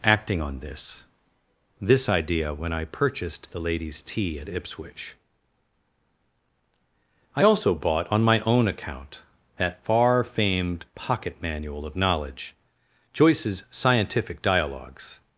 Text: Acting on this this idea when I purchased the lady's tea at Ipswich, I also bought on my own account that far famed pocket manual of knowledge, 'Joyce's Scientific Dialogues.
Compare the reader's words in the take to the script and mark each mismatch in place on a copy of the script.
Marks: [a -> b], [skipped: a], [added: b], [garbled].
Acting on this this idea when I purchased the lady's tea at Ipswich, I also bought on my own account that far famed pocket manual of knowledge, 'Joyce's Scientific Dialogues.